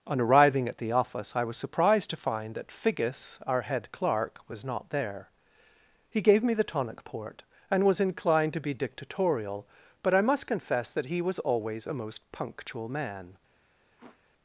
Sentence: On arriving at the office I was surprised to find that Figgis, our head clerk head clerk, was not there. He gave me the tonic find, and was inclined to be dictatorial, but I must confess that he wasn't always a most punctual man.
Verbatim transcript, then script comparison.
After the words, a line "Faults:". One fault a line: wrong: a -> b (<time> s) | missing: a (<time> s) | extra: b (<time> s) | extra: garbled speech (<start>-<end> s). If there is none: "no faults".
On arriving at the office I was surprised to find that Figgis, our head clerk, was not there. He gave me the tonic port, and was inclined to be dictatorial, but I must confess that he was always a most punctual man.
Faults:
missing: head clerk (4.4 s)
wrong: find -> port (7.0 s)
wrong: wasn't -> was (11.2 s)